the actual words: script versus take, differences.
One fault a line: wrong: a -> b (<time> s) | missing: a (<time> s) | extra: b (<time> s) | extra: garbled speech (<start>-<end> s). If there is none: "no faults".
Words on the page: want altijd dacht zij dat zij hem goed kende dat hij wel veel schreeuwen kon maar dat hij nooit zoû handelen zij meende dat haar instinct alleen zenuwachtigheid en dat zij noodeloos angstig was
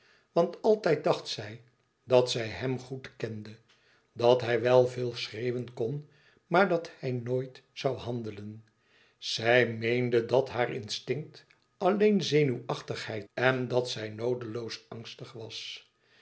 no faults